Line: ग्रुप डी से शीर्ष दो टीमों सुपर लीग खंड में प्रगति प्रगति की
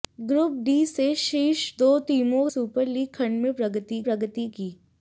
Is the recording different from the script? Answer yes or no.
no